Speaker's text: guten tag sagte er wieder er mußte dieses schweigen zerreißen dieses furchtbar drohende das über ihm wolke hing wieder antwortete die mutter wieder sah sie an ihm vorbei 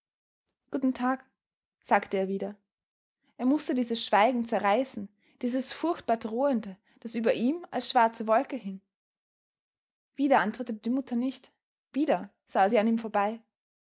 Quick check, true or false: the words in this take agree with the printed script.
false